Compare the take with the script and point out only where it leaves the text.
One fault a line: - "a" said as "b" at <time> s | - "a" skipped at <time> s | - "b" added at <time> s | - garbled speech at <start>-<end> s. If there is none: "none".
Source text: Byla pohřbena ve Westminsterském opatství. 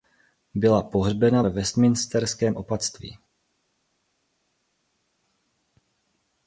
none